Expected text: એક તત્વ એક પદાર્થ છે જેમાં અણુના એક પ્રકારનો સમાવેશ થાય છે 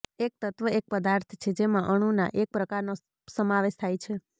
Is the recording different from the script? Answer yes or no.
no